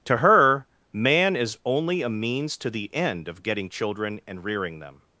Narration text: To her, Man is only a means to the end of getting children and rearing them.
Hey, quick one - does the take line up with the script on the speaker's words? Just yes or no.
yes